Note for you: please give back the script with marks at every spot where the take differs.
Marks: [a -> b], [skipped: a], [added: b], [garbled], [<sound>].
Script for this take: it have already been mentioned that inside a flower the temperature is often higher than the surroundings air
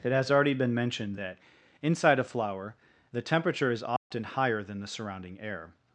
it [have -> has] already been mentioned that inside a flower the temperature is often [dropout] higher than the [surroundings -> surrounding] air